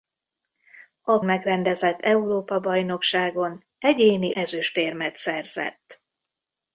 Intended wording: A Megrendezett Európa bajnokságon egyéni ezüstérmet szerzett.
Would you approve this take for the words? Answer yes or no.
yes